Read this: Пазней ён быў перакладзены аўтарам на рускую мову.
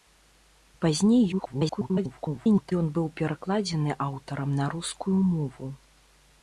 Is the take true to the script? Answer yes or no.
no